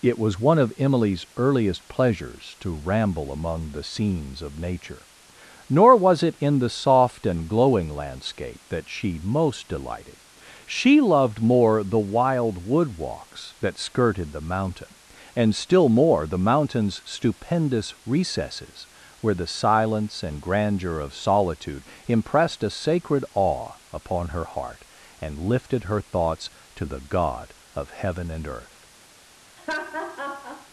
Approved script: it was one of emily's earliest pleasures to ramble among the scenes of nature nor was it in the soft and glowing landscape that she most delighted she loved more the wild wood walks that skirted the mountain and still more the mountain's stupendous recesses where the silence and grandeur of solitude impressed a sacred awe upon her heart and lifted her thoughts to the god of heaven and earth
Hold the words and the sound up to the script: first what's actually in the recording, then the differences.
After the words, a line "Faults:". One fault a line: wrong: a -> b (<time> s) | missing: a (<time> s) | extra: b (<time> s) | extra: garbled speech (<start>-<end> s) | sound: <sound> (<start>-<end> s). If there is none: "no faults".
it was one of emily's earliest pleasures to ramble among the scenes of nature nor was it in the soft and glowing landscape that she most delighted she loved more the wild wood walks that skirted the mountain and still more the mountain's stupendous recesses where the silence and grandeur of solitude impressed a sacred awe upon her heart and lifted her thoughts to the god of heaven and earth
Faults:
sound: laugh (29.6-30.7 s)